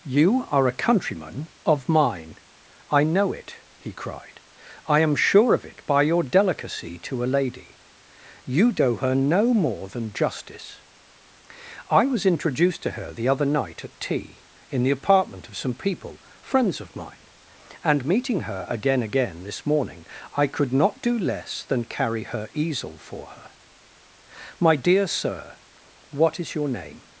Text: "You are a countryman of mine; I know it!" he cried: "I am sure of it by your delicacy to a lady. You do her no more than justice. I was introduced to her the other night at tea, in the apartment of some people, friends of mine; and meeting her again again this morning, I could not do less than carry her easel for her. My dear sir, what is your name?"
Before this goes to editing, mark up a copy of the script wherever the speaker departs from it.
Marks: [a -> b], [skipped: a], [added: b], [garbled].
"You are a countryman of mine; I know it!" he cried: "I am sure of it by your delicacy to a lady. You do her no more than justice. I was introduced to her the other night at tea, in the apartment of some people, friends of mine; and meeting her again again this morning, I could not do less than carry her easel for her. My dear sir, what is your name?"